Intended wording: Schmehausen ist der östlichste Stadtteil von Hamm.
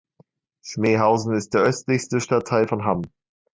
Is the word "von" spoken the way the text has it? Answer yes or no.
yes